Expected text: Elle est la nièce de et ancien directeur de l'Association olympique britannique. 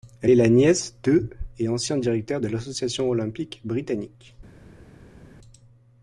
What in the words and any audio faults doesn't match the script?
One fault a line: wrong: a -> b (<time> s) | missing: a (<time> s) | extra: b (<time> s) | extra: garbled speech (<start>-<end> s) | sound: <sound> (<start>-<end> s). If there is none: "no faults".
no faults